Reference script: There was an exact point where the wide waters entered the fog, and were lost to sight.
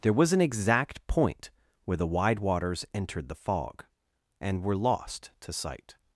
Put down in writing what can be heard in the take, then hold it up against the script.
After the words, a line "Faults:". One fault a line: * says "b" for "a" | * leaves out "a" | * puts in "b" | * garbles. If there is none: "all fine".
There was an exact point where the wide waters entered the fog, and were lost to sight.
Faults:
all fine